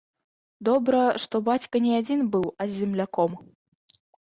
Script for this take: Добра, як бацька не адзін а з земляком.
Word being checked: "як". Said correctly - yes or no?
no